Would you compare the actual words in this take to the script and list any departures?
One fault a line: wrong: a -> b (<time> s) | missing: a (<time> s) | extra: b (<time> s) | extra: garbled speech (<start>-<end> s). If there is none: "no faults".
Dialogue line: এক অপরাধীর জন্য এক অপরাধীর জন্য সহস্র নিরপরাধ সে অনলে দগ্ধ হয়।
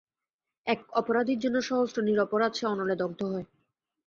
missing: এক অপরাধীর জন্য (1.6 s)